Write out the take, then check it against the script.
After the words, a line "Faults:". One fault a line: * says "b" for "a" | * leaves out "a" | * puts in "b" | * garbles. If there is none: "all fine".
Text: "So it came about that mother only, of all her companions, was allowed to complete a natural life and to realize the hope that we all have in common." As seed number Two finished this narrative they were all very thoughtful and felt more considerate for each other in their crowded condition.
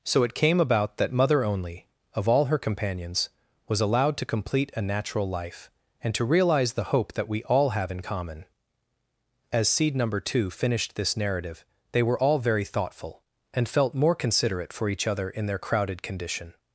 "So it came about that mother only, of all her companions, was allowed to complete a natural life and to realize the hope that we all have in common." As seed number Two finished this narrative they were all very thoughtful and felt more considerate for each other in their crowded condition.
Faults:
all fine